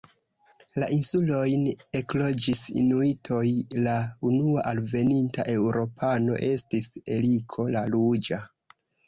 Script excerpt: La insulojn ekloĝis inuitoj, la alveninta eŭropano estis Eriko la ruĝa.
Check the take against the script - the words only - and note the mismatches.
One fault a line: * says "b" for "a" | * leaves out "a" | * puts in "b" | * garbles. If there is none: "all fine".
* puts in "unua"